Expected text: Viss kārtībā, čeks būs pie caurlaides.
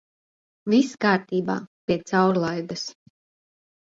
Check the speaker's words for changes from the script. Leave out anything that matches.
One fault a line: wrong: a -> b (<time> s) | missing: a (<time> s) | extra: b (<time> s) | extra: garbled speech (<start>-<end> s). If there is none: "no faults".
missing: čeks būs (1.6 s)